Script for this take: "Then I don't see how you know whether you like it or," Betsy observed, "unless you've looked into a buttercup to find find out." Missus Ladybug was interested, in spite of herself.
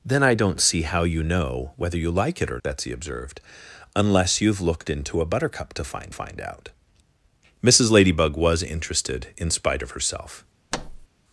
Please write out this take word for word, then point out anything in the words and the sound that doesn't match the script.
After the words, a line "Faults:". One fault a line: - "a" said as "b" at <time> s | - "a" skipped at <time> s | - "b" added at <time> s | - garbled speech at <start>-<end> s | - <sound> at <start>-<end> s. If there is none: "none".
"Then I don't see how you know whether you like it or," Betsy observed, "unless you've looked into a buttercup to find find out." Missus Ladybug was interested, in spite of herself.
Faults:
- thud at 10.7-11.1 s